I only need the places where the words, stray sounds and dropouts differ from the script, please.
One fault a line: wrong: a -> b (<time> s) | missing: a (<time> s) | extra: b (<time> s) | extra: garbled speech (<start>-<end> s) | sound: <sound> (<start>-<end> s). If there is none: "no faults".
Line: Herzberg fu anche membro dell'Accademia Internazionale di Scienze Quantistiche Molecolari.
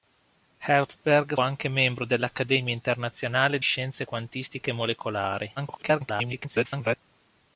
missing: fu (1.4 s)
missing: di (3.6 s)
extra: garbled speech (5.6-7.0 s)